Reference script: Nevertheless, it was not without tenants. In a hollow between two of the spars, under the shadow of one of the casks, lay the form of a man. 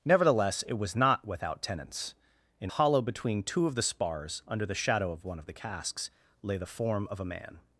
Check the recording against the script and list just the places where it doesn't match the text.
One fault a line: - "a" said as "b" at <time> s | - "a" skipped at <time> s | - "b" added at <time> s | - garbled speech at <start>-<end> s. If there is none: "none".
- "a" skipped at 2.7 s